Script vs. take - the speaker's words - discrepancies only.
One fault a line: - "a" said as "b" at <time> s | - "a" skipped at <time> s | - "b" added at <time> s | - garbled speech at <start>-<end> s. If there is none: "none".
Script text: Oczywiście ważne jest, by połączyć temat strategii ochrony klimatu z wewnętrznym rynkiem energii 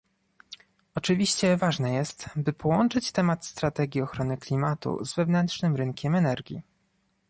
none